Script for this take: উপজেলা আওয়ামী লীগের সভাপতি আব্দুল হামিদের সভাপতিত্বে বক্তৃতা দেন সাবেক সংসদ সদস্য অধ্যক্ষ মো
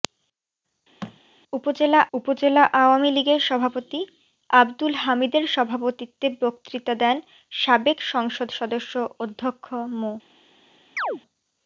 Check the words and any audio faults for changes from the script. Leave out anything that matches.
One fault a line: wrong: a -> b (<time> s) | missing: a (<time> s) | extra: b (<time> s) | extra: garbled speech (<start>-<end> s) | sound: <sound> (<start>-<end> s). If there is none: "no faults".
sound: thud (1.0-1.2 s)
extra: উপজেলা (2.1 s)
sound: chirp (11.0-11.2 s)